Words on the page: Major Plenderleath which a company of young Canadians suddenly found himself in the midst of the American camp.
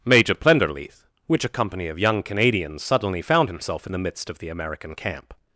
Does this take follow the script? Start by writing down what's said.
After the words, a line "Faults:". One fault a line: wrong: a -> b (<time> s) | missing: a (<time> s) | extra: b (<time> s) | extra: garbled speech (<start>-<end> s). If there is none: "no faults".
Major Plenderleath which a company of young Canadians suddenly found himself in the midst of the American camp.
Faults:
no faults